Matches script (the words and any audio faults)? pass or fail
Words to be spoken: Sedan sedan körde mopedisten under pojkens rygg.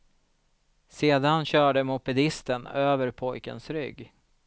fail